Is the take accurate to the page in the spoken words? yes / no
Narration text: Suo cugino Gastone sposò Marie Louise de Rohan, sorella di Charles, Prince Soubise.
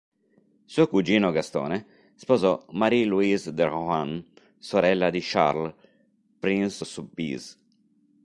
yes